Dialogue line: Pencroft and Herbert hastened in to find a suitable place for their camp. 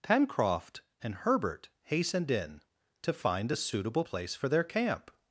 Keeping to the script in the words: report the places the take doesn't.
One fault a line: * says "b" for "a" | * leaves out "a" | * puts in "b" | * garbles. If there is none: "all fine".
all fine